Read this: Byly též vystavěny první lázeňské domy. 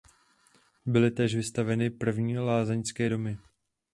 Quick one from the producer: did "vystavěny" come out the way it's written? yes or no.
yes